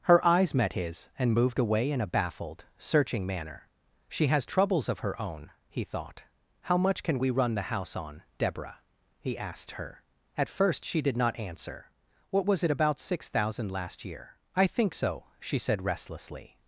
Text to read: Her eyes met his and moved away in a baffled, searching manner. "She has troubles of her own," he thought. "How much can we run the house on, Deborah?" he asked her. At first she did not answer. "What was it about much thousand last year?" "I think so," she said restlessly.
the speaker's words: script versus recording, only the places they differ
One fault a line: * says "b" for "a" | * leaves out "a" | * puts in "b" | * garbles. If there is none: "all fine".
* says "six" for "much"